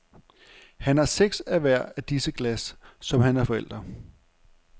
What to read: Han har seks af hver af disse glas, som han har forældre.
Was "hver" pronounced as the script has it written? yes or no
yes